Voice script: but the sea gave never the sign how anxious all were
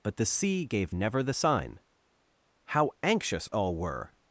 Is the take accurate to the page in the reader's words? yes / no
yes